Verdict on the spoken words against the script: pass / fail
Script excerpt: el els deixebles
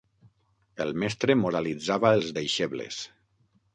fail